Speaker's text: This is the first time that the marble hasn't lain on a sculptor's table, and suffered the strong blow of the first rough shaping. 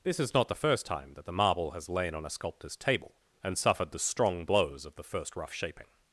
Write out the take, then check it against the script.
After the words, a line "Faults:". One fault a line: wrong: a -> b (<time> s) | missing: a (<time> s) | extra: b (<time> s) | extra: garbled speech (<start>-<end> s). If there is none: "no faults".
This is not the first time that the marble has lain on a sculptor's table, and suffered the strong blows of the first rough shaping.
Faults:
extra: not (0.3 s)
wrong: hasn't -> has (1.7 s)
wrong: blow -> blows (4.4 s)